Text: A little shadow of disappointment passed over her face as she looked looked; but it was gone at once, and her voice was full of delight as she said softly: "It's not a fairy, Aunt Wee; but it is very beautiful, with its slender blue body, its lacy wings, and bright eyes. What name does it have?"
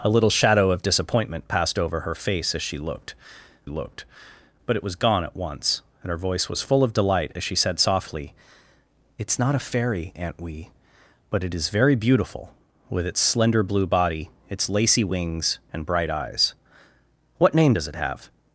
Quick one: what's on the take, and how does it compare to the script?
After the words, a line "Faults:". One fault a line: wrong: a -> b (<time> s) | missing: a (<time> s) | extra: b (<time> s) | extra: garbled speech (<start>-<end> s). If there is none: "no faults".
A little shadow of disappointment passed over her face as she looked looked; but it was gone at once, and her voice was full of delight as she said softly: "It's not a fairy, Aunt Wee; but it is very beautiful, with its slender blue body, its lacy wings, and bright eyes. What name does it have?"
Faults:
no faults